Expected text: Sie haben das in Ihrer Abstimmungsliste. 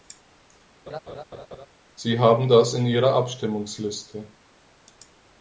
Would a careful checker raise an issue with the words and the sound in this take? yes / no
yes